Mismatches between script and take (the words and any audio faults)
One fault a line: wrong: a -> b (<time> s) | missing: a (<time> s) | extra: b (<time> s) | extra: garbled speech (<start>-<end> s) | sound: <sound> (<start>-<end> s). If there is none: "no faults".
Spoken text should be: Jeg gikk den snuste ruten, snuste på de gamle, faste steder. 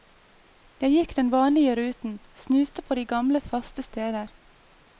wrong: snuste -> vanlige (1.3 s)